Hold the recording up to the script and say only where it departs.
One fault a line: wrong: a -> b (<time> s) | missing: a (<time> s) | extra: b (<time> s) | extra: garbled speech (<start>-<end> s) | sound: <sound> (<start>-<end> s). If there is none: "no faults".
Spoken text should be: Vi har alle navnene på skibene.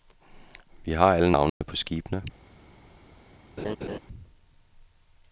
sound: dropout (1.5-1.6 s)
sound: laugh (3.6-4.0 s)